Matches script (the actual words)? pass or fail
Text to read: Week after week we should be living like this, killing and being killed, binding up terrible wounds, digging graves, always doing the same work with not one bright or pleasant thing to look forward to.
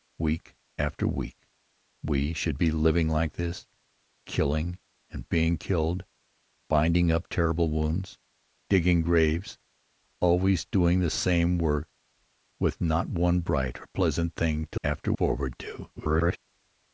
fail